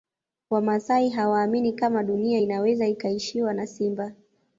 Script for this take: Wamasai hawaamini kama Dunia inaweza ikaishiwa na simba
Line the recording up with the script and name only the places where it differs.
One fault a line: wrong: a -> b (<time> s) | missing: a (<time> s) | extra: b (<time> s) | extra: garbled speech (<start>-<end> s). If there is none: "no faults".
no faults